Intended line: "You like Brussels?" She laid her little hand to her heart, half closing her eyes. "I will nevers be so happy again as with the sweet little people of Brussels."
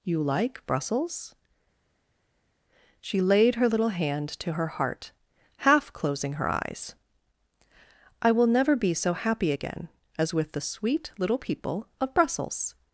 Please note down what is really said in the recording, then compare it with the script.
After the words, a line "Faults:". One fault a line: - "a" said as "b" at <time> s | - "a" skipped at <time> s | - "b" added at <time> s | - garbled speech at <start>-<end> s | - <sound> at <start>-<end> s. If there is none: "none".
"You like Brussels?" She laid her little hand to her heart, half closing her eyes. "I will never be so happy again as with the sweet little people of Brussels."
Faults:
- "nevers" said as "never" at 8.5 s